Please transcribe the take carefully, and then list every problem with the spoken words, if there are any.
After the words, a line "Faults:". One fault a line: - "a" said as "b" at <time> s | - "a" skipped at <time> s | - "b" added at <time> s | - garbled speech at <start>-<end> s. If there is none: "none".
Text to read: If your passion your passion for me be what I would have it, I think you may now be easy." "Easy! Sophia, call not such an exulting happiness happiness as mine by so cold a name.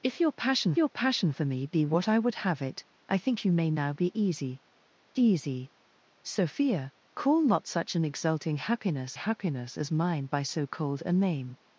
If your passion your passion for me be what I would have it, I think you may now be easy." "Easy! Sophia, call not such an exulting happiness happiness as mine by so cold a name.
Faults:
none